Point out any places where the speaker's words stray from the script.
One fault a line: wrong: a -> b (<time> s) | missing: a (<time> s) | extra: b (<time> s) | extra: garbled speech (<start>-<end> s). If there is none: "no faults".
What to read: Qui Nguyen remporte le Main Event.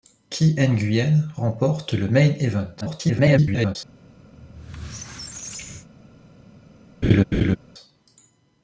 extra: garbled speech (2.8-3.8 s)